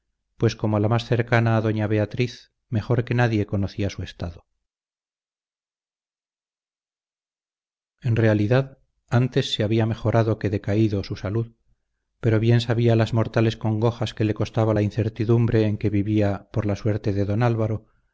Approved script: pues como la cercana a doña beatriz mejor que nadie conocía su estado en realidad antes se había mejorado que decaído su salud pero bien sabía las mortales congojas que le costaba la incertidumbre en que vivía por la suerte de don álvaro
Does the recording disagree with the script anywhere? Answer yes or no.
yes